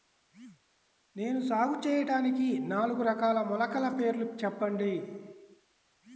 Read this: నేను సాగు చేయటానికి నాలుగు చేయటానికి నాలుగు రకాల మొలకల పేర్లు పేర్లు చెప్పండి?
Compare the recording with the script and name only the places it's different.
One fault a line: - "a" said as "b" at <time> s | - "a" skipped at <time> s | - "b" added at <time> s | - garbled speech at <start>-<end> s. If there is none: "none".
- "చేయటానికి నాలుగు" skipped at 3.0 s
- "పేర్లు" skipped at 4.3 s